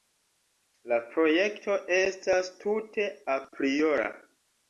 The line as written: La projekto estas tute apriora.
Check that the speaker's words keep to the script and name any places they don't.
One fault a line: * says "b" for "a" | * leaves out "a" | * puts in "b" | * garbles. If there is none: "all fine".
all fine